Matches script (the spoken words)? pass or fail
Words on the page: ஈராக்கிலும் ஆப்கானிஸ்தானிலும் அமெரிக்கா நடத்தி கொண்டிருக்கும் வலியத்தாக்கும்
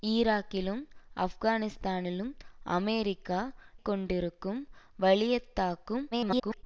fail